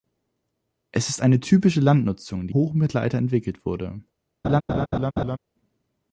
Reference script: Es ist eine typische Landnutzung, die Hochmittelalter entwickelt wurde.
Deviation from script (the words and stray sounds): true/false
true